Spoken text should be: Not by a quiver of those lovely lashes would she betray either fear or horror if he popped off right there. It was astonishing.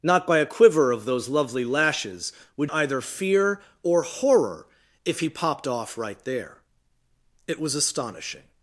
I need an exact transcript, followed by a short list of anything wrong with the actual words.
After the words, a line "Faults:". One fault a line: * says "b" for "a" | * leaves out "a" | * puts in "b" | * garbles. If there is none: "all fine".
Not by a quiver of those lovely lashes would either fear or horror if he popped off right there. It was astonishing.
Faults:
* leaves out "she betray"